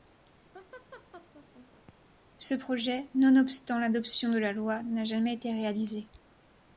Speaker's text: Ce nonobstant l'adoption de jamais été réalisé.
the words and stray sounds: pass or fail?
fail